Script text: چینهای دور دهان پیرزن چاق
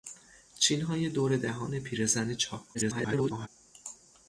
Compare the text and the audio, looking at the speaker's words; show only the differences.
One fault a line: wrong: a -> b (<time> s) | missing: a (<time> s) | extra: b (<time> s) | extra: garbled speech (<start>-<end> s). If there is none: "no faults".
extra: garbled speech (2.7-3.5 s)